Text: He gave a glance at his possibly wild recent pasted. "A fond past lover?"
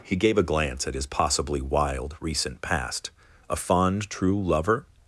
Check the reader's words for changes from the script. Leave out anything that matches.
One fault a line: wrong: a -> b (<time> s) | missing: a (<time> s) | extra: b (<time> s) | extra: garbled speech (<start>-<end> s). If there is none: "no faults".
wrong: pasted -> past (2.6 s)
wrong: past -> true (4.1 s)